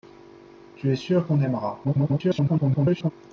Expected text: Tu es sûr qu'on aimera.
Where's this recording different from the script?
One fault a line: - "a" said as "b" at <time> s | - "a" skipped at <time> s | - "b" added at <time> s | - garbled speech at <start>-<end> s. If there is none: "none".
- garbled speech at 1.8-3.1 s